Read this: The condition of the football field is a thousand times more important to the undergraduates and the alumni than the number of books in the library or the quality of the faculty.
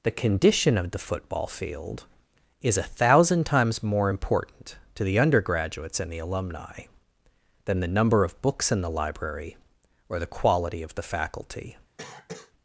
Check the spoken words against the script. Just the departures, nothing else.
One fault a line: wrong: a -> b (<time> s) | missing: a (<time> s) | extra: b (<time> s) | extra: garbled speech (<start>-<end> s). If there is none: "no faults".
no faults